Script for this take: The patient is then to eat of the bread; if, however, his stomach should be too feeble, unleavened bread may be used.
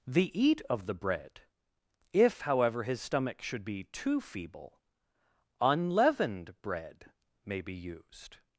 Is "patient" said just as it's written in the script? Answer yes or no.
no